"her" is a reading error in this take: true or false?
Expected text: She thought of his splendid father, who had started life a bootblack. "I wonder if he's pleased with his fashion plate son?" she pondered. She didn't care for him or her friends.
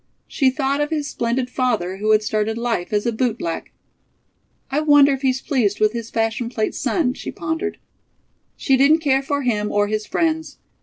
true